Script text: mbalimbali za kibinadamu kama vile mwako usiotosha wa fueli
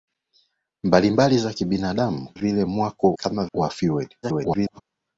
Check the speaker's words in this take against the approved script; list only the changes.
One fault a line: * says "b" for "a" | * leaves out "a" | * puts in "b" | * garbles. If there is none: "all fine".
* leaves out "kama"
* says "kama" for "usiotosha"
* garbles